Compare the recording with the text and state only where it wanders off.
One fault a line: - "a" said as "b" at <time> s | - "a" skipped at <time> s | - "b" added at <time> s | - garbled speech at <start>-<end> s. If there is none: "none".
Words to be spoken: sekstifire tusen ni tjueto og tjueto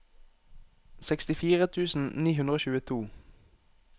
- "tjueto" said as "hundre" at 2.4 s